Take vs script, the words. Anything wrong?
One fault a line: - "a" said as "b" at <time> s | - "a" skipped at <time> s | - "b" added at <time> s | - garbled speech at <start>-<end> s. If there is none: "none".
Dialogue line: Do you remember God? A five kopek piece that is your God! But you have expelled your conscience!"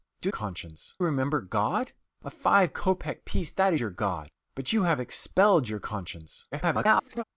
- "you" said as "conscience" at 0.3 s
- "is" skipped at 3.7 s
- garbled speech at 6.5-7.2 s